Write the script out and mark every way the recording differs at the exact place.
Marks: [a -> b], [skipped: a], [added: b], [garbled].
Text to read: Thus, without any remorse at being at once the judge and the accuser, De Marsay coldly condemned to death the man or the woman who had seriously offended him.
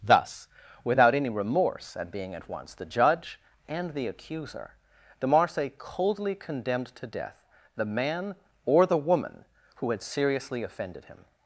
Thus, without any remorse at being at once the judge and the accuser, De Marsay coldly condemned to death the man or the woman who had seriously offended him.